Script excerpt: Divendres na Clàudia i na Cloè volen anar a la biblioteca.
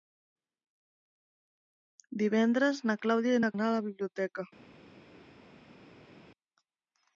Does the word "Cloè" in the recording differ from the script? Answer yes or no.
yes